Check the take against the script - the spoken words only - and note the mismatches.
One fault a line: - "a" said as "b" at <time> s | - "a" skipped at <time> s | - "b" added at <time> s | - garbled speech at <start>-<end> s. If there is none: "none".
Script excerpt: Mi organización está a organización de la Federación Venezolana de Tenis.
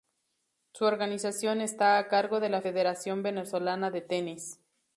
- "Mi" said as "Su" at 0.7 s
- "organización" said as "cargo" at 2.1 s